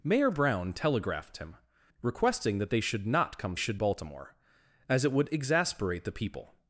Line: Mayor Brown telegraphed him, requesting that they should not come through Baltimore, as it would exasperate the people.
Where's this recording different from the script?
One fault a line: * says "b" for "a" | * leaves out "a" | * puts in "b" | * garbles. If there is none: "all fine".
* says "should" for "through"